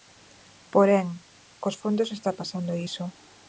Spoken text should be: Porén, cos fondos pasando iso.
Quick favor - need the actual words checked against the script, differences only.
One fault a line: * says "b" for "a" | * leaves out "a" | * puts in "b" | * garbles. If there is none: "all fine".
* puts in "está"